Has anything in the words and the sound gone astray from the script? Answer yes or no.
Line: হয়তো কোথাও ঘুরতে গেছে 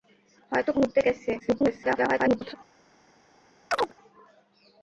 yes